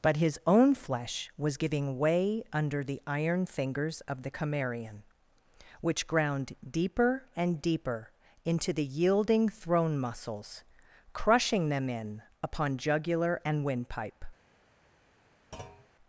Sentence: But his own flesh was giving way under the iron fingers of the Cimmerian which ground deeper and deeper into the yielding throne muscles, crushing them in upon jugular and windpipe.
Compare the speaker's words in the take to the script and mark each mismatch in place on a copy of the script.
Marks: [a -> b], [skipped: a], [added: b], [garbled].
But his own flesh was giving way under the iron fingers of the Cimmerian which ground deeper and deeper into the yielding throne muscles, crushing them in upon jugular and windpipe.